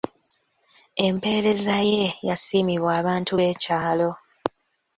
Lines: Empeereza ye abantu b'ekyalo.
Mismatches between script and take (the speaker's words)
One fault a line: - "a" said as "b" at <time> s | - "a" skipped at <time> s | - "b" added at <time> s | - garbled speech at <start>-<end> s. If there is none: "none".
- "yasiimibwa" added at 2.3 s